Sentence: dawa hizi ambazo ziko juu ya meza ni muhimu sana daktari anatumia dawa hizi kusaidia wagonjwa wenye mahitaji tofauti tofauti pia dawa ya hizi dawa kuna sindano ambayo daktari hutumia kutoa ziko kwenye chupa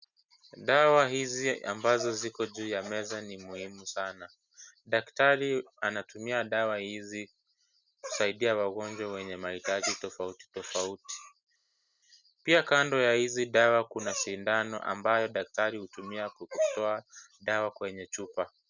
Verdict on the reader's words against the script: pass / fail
fail